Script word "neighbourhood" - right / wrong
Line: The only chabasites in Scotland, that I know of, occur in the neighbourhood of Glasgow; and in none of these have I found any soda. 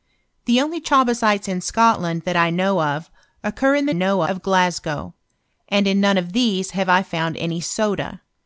wrong